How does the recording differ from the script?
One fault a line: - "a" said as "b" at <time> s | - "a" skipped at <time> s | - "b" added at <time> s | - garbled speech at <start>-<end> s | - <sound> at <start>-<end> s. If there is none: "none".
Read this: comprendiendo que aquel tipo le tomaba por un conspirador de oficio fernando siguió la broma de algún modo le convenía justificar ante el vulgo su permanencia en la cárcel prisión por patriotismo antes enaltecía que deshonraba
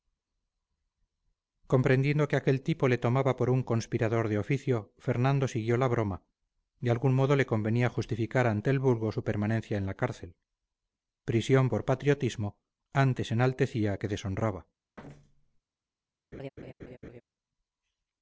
- thud at 15.0-15.6 s
- laugh at 16.3-17.2 s